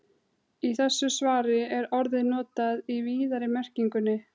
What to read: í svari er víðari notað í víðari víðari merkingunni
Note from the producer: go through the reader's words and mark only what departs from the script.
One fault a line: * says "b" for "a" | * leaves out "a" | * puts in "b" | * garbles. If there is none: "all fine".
* puts in "þessu"
* says "orðið" for "víðari"
* leaves out "víðari"